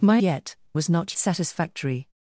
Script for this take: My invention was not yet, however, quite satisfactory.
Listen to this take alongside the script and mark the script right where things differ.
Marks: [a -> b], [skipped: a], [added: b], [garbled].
My [invention -> yet] was not [skipped: yet, however, quite] satisfactory.